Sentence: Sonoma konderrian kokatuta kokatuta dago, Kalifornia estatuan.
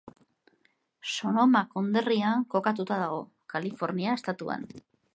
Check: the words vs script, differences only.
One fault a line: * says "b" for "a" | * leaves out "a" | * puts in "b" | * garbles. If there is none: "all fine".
* leaves out "kokatuta"